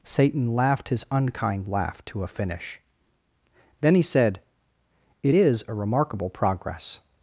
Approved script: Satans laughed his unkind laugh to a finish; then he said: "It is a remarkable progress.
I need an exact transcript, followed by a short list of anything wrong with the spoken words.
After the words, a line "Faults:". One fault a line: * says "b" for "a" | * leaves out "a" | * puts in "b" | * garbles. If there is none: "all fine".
Satan laughed his unkind laugh to a finish; then he said: "It is a remarkable progress.
Faults:
* says "Satan" for "Satans"